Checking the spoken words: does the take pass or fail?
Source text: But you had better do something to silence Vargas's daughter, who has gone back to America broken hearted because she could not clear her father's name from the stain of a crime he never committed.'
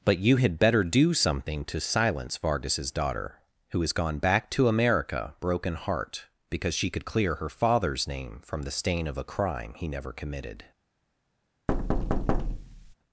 fail